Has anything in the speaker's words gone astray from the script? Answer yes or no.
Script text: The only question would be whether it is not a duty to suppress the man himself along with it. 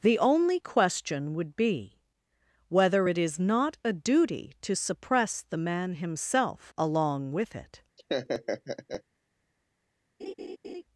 no